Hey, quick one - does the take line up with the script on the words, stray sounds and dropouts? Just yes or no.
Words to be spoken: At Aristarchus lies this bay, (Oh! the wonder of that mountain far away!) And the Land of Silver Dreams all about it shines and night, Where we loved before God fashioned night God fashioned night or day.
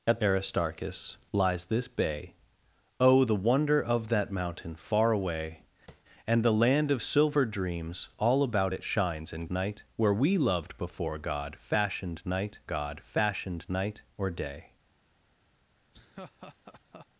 no